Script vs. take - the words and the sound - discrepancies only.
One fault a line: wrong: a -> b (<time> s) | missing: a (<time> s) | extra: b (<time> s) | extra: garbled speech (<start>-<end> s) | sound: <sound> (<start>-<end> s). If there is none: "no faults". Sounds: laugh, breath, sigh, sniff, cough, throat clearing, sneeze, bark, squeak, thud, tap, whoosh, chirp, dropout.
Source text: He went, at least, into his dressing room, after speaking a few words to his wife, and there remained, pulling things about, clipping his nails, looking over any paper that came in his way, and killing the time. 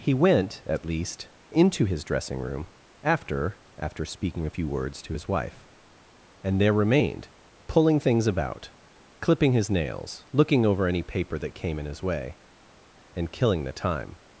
extra: after (3.8 s)